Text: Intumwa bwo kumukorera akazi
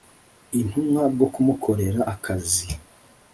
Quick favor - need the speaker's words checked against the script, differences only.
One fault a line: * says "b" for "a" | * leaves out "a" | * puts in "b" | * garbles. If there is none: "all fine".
all fine